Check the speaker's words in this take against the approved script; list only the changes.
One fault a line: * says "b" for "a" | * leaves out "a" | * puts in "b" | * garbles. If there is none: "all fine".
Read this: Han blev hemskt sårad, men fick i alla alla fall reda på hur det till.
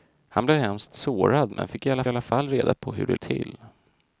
all fine